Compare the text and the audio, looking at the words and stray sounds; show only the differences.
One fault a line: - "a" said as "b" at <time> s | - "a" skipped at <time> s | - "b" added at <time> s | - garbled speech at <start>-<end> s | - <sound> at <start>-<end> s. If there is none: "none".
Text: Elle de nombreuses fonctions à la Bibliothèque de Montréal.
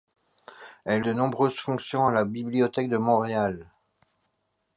none